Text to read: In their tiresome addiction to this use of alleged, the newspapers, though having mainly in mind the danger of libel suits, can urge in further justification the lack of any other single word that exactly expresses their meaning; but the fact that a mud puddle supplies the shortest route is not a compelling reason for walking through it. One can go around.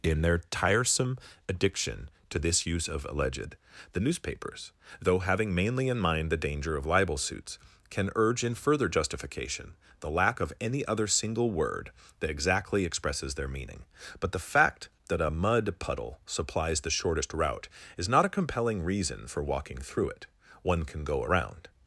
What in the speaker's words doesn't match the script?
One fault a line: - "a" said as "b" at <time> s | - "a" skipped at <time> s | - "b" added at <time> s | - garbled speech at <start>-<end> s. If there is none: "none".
none